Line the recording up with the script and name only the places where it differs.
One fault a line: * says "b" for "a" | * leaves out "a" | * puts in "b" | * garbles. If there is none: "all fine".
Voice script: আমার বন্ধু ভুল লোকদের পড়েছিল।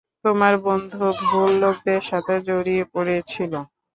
* says "তোমার" for "আমার"
* puts in "সাথে জড়িয়ে"